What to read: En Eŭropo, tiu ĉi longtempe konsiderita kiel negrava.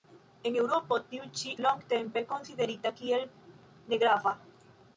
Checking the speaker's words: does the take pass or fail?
pass